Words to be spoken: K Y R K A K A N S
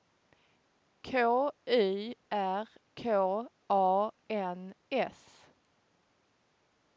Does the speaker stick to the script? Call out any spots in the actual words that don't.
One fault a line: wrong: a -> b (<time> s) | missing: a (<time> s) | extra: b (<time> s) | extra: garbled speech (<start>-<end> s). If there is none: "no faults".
missing: K A (4.1 s)